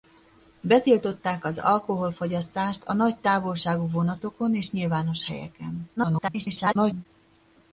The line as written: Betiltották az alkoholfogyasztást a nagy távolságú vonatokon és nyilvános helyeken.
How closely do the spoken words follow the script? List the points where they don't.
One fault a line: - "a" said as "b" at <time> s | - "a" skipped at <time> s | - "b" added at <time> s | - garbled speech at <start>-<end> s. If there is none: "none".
- garbled speech at 6.0-7.1 s